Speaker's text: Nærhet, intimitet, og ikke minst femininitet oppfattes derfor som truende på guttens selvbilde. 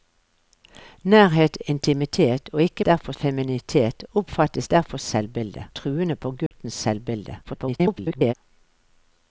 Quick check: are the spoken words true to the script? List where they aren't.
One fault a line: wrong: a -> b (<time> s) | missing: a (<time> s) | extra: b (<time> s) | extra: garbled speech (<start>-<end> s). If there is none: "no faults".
wrong: minst -> derfor (2.8 s)
wrong: som -> selvbilde (5.0 s)
extra: garbled speech (7.4-8.3 s)